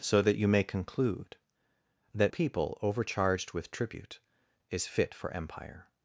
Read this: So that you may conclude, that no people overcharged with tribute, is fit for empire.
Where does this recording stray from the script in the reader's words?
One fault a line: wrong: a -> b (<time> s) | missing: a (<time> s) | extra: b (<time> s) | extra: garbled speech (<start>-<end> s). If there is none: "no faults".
missing: no (2.3 s)